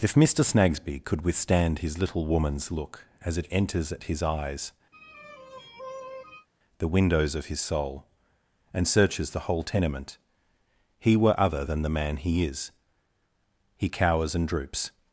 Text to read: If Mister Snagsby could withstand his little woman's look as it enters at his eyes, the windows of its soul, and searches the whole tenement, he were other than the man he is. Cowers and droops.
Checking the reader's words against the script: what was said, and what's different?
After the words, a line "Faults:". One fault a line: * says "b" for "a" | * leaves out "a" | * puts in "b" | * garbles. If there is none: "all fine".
If Mister Snagsby could withstand his little woman's look as it enters at his eyes, the windows of his soul, and searches the whole tenement, he were other than the man he is. He cowers and droops.
Faults:
* says "his" for "its"
* puts in "He"